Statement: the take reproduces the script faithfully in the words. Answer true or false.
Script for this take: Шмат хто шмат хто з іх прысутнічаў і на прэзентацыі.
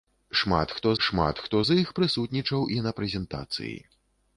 true